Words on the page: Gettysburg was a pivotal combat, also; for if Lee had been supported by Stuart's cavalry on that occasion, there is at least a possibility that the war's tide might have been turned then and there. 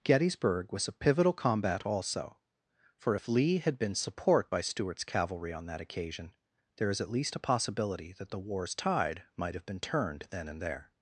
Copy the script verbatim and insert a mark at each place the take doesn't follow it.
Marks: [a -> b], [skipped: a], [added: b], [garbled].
Gettysburg was a pivotal combat, also; for if Lee had been [supported -> support] by Stuart's cavalry on that occasion, there is at least a possibility that the war's tide might have been turned then and there.